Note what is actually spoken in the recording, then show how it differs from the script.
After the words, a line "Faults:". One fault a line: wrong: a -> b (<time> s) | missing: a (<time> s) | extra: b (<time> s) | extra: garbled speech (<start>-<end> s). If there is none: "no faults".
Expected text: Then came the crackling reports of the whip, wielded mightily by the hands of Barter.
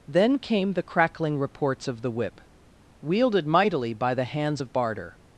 Then came the crackling reports of the whip, wielded mightily by the hands of Barter.
Faults:
no faults